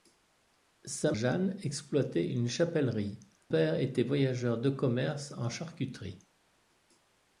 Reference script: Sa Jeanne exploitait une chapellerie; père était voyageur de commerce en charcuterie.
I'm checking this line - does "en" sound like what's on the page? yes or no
yes